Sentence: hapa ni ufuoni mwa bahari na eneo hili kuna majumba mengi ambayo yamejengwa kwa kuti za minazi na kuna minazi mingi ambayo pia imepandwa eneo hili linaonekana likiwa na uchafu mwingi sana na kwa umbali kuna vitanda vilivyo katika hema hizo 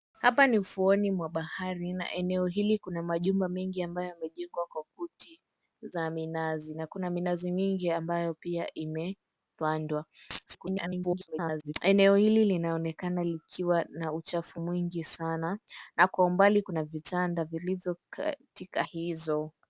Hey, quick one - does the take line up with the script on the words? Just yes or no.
no